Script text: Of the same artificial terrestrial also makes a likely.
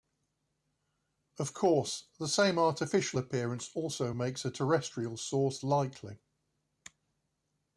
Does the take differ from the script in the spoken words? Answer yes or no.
yes